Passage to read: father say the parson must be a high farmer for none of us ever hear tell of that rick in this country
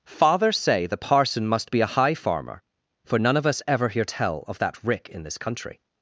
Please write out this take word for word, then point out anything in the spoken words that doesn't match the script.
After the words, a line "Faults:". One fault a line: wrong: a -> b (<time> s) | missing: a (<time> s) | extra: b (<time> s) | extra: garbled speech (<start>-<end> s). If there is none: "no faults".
father say the parson must be a high farmer for none of us ever hear tell of that rick in this country
Faults:
no faults